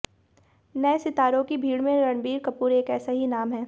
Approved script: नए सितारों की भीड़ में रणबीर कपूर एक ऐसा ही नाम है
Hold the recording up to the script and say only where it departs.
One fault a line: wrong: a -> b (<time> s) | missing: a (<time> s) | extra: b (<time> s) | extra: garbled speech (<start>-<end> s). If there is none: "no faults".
no faults